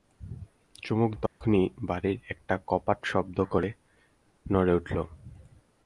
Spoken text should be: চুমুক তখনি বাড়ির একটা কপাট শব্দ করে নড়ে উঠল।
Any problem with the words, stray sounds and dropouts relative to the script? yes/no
yes